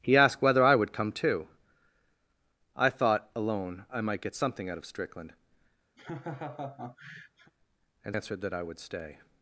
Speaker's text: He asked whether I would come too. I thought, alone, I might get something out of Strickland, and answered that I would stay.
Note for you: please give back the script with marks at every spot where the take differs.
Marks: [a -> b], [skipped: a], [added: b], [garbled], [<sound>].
He asked whether I would come too. I thought, alone, I might get something out of Strickland, [laugh] and answered that I would stay.